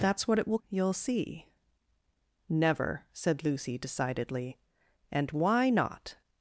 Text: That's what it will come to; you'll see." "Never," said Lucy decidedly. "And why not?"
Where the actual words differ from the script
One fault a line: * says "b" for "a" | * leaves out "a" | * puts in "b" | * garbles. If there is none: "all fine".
* leaves out "come to"